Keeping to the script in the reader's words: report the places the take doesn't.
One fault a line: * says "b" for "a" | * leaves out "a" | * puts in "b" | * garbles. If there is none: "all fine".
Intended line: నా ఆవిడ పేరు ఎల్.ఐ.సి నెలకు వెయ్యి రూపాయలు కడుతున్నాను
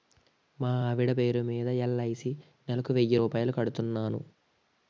* says "మా" for "నా"
* puts in "మీద"